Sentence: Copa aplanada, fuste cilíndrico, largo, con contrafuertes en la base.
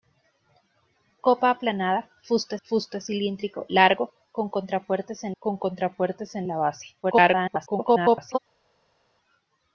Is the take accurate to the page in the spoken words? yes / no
no